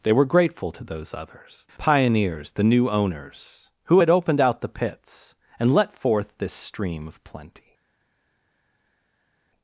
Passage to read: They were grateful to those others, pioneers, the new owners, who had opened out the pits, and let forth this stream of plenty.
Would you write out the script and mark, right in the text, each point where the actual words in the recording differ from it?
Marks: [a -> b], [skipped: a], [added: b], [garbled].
They were grateful to those others, pioneers, the new owners, who had opened out the pits, and let forth this stream of plenty.